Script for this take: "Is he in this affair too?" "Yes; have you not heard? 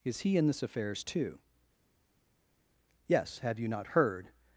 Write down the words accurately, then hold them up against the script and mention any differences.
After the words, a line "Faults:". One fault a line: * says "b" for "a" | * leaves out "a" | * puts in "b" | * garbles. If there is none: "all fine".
"Is he in this affairs too?" "Yes; have you not heard?
Faults:
* says "affairs" for "affair"